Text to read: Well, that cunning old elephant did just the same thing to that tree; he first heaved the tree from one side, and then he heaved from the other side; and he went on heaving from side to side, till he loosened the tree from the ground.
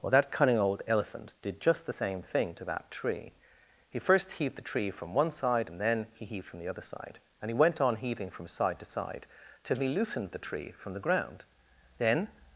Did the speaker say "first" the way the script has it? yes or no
yes